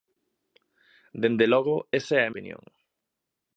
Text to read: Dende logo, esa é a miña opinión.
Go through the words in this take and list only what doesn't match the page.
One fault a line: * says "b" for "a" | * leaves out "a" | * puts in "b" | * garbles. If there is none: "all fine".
* leaves out "miña"